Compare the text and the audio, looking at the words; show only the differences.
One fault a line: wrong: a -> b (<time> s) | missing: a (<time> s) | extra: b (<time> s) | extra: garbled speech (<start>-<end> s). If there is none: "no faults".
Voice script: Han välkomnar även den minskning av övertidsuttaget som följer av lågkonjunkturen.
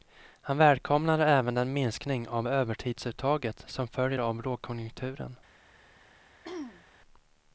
no faults